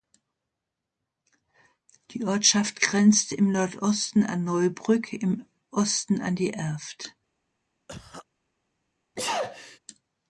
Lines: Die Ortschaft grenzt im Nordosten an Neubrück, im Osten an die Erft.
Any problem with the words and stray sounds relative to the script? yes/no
yes